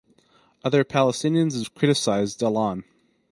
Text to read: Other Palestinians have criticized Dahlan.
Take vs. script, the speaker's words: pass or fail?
pass